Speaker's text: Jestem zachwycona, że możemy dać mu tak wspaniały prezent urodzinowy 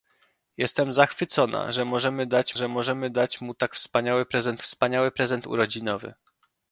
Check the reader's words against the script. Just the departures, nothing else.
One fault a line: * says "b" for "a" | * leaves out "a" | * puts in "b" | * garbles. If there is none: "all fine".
* puts in "że możemy dać"
* puts in "wspaniały prezent"